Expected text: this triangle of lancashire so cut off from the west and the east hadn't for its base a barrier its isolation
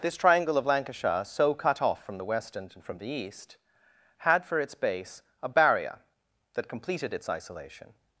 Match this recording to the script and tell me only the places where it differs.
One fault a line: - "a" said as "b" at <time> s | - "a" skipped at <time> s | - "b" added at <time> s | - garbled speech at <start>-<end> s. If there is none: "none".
- "from" added at 2.8 s
- "hadn't" said as "had" at 4.2 s
- "that completed" added at 6.5 s